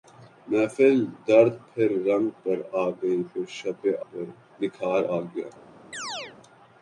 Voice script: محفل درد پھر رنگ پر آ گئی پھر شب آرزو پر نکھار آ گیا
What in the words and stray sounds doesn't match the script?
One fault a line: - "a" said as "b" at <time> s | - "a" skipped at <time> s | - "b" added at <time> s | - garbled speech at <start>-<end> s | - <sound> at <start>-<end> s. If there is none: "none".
- "آرزو" skipped at 3.8 s
- chirp at 5.9-6.4 s